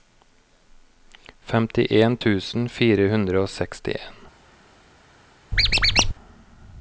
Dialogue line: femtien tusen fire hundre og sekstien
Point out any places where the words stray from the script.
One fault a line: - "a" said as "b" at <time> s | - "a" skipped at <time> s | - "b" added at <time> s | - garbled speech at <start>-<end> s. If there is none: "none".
none